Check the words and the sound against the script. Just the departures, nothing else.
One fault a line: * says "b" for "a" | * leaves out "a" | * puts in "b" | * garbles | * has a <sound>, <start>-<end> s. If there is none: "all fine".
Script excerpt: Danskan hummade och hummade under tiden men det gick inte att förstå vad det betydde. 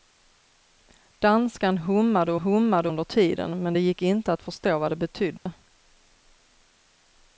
* has a dropout, 5.4-5.5 s